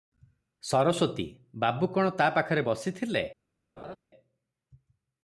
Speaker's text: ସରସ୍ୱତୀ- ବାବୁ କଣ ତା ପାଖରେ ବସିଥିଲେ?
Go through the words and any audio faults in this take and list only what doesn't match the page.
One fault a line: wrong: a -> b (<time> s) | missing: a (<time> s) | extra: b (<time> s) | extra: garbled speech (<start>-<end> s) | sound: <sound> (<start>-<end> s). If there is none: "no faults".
sound: laugh (3.8-4.0 s)